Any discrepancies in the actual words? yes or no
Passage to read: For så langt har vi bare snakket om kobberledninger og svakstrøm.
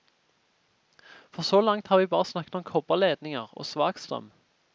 no